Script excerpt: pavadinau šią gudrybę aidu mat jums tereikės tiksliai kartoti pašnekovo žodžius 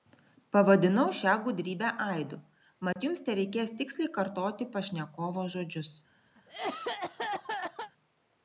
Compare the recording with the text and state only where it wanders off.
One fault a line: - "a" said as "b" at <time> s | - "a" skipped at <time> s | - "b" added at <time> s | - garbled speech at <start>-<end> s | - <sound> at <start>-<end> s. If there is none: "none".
- dropout at 2.9-3.0 s
- cough at 6.4-7.9 s